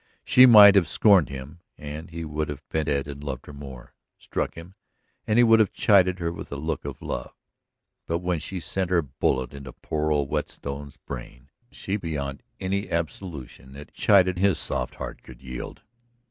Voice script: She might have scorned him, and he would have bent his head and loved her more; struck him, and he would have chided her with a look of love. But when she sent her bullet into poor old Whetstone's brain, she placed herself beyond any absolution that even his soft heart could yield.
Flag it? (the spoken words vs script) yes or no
yes